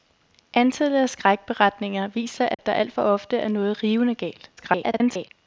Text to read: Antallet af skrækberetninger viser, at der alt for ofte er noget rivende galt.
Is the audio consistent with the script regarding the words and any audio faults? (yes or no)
no